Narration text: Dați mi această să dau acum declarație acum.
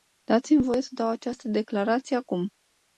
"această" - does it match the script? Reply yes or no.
no